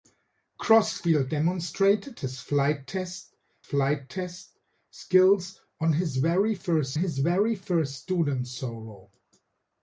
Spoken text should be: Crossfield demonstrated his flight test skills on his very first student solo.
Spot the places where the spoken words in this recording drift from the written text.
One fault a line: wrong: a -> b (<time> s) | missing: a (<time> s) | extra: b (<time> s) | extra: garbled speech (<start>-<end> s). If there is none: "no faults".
extra: flight test (3.6 s)
extra: his very first (7.0 s)